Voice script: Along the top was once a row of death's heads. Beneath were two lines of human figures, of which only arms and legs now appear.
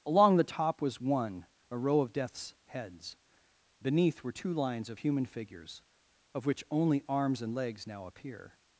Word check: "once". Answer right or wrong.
wrong